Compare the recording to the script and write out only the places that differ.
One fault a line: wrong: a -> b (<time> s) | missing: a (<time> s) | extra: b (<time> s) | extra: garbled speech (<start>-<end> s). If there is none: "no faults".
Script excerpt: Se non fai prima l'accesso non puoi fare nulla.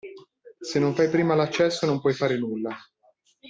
no faults